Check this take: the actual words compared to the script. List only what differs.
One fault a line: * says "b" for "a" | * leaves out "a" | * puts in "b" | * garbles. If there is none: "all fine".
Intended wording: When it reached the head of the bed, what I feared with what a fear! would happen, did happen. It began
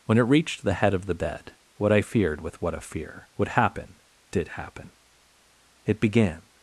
all fine